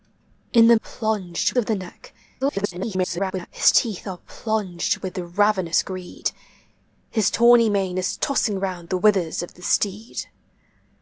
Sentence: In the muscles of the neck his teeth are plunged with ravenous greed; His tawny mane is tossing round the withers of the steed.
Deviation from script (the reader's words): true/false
true